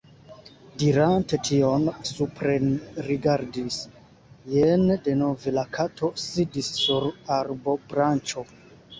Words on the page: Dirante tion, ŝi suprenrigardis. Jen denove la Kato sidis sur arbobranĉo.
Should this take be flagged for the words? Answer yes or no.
yes